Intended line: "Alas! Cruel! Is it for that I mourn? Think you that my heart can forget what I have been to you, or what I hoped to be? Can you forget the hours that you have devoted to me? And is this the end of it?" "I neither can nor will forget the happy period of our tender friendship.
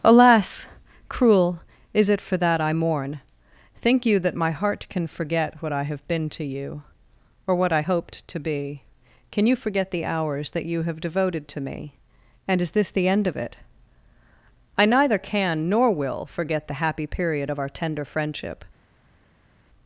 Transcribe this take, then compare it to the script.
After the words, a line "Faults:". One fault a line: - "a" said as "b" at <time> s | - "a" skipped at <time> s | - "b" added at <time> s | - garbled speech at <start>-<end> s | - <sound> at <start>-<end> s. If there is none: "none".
"Alas! Cruel! Is it for that I mourn? Think you that my heart can forget what I have been to you, or what I hoped to be? Can you forget the hours that you have devoted to me? And is this the end of it?" "I neither can nor will forget the happy period of our tender friendship.
Faults:
none